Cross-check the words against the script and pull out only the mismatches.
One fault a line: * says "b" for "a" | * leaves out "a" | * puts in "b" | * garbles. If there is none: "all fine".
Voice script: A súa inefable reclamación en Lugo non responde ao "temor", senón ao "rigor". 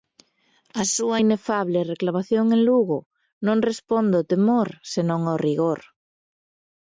all fine